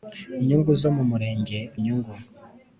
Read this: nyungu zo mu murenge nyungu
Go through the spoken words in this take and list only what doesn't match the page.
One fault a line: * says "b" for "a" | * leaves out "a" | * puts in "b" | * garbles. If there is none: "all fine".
all fine